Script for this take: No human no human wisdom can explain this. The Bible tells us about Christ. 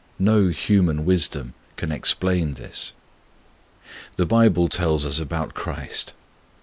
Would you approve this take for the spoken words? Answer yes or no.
no